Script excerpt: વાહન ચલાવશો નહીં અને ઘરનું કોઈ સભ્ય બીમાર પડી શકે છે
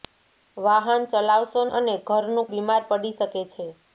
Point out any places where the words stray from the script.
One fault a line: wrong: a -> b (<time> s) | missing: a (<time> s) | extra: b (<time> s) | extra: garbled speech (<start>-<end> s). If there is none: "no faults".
missing: નહીં (1.6 s)
missing: કોઈ સભ્ય (2.5 s)